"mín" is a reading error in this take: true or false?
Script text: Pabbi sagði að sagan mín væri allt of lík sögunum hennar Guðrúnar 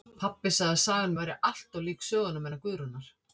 true